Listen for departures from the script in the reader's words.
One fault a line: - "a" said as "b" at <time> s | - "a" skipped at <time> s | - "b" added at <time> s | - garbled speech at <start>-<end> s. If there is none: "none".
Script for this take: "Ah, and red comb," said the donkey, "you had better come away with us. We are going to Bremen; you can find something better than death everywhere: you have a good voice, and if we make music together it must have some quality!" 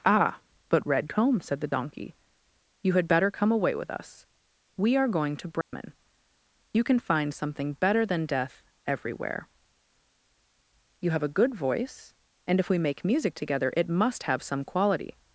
- "and" said as "but" at 0.7 s